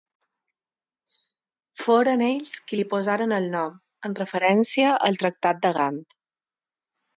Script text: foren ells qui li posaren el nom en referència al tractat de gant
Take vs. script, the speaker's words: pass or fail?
pass